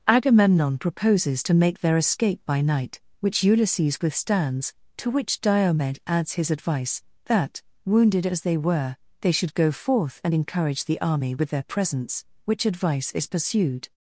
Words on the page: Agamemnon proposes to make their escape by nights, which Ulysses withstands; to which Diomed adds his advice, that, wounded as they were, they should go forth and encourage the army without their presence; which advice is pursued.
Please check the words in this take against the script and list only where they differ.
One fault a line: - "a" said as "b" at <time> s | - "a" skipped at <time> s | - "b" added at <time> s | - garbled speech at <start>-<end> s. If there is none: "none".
- "nights" said as "night" at 2.6 s
- "without" said as "with" at 11.3 s